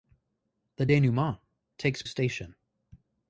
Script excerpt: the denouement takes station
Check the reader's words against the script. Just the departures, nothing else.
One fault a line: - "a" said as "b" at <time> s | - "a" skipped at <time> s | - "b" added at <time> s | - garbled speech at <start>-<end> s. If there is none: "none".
none